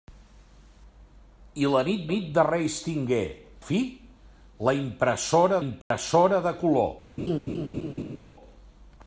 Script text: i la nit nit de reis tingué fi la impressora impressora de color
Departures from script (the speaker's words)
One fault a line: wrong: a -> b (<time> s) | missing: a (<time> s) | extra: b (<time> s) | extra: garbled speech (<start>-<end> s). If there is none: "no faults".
no faults